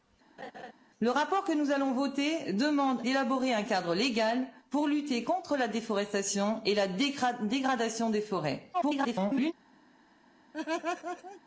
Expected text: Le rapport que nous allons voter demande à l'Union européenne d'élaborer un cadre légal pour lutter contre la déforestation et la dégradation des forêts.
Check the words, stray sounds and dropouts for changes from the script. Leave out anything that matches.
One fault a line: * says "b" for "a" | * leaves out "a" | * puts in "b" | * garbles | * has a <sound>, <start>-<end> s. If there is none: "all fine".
* has a laugh, 0.4-0.7 s
* leaves out "à l'Union européenne"
* garbles
* has a laugh, 10.5-11.4 s